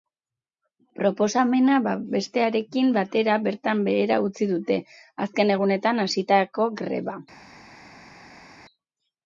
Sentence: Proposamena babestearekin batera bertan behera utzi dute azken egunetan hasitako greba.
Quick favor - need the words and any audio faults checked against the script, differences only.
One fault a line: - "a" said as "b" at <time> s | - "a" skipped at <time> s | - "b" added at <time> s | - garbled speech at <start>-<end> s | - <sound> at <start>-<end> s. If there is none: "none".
none